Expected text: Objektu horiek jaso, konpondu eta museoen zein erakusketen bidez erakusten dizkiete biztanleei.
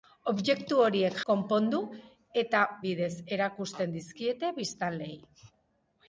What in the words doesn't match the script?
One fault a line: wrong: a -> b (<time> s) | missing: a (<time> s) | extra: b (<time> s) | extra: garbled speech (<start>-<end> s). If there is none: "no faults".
missing: jaso (1.2 s)
missing: museoen zein erakusketen (2.6 s)